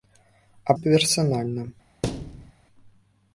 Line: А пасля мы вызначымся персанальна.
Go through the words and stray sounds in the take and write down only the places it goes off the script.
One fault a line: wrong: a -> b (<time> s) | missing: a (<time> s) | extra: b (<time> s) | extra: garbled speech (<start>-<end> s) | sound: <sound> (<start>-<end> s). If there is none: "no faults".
missing: пасля мы вызначымся (0.7 s)
sound: thud (2.0-2.5 s)